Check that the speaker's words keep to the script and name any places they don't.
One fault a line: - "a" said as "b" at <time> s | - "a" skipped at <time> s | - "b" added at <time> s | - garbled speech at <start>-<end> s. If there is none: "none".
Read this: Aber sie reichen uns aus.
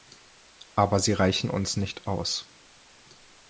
- "nicht" added at 1.8 s